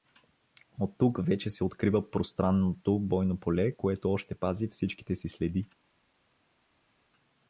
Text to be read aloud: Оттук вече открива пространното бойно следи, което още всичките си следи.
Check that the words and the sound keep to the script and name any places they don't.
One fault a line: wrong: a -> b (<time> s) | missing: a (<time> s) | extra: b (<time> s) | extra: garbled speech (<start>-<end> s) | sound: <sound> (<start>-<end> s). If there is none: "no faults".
extra: се (1.5 s)
wrong: следи -> поле (3.4 s)
extra: пази (4.3 s)